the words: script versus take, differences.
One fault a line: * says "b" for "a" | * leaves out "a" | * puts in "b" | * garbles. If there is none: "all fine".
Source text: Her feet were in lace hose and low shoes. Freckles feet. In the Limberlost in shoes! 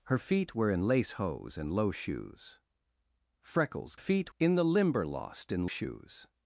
all fine